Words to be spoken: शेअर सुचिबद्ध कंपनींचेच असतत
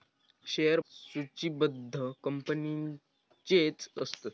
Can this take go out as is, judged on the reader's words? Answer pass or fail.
pass